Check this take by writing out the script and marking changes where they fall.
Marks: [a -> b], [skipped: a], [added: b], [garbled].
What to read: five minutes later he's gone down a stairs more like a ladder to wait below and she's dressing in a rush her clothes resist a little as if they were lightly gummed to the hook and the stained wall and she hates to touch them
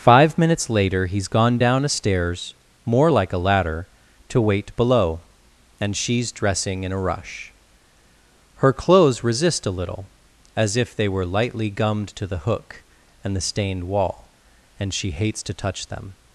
five minutes later he's gone down a stairs more like a ladder to wait below and she's dressing in a rush her clothes resist a little as if they were lightly gummed to the hook and the stained wall and she hates to touch them